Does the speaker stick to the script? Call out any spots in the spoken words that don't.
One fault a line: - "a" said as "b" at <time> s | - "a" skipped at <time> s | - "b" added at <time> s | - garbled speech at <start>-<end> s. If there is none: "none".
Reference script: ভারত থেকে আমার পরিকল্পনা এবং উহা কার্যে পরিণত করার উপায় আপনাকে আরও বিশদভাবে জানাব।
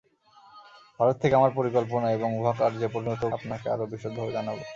- "করার উপায়" skipped at 3.2 s